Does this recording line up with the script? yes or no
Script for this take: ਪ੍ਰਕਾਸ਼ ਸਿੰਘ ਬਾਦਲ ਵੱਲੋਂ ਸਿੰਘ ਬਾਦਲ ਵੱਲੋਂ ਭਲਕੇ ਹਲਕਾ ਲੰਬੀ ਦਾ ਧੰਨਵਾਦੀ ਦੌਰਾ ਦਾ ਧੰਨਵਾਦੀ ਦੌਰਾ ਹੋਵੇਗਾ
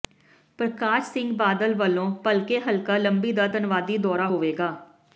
no